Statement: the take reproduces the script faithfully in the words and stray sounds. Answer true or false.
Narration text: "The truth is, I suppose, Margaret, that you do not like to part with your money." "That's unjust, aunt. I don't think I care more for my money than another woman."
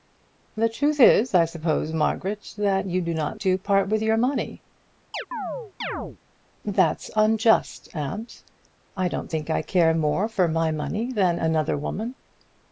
false